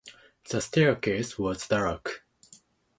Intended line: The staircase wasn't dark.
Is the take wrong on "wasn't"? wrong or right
wrong